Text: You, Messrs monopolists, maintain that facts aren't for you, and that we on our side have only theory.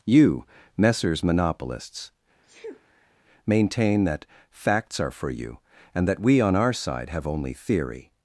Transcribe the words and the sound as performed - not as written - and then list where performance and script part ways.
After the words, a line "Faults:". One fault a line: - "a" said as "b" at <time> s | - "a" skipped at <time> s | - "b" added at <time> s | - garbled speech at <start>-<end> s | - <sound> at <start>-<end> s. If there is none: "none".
You, Messrs monopolists, maintain that facts are for you, and that we on our side have only theory.
Faults:
- sneeze at 2.4-3.1 s
- "aren't" said as "are" at 5.0 s